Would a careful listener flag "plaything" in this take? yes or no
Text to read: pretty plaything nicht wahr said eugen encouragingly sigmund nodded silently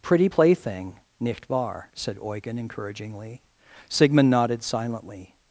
no